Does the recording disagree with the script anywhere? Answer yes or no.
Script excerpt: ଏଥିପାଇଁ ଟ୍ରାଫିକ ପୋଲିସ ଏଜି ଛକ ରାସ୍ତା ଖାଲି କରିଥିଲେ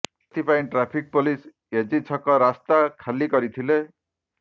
no